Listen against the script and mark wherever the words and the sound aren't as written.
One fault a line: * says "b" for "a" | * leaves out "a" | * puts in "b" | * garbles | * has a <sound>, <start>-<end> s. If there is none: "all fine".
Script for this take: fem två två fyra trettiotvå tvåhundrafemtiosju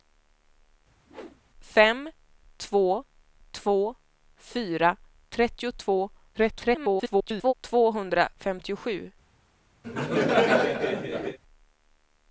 * has a whoosh, 1.1-1.4 s
* garbles
* has a laugh, 9.8-11.4 s